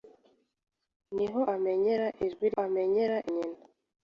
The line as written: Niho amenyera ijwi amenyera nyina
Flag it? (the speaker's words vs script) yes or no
no